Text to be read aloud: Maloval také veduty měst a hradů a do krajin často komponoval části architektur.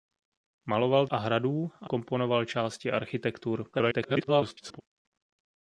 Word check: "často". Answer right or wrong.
wrong